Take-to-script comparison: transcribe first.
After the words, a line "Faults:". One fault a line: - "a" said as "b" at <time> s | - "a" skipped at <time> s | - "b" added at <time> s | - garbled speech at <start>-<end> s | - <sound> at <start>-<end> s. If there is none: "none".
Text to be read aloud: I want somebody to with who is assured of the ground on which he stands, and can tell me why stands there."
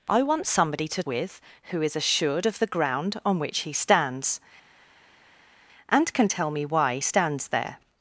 I want somebody to with who is assured of the ground on which he stands, and can tell me why stands there."
Faults:
none